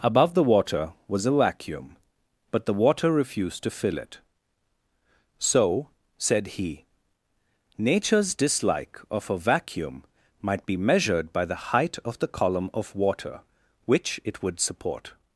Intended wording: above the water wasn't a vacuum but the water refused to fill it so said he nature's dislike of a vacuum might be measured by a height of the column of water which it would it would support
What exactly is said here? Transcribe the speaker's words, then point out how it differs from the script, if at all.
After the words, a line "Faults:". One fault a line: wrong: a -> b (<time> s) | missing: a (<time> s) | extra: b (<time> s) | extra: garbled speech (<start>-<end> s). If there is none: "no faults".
above the water was a vacuum but the water refused to fill it so said he nature's dislike of a vacuum might be measured by the height of the column of water which it would support
Faults:
wrong: wasn't -> was (1.1 s)
wrong: a -> the (11.4 s)
missing: it would (14.6 s)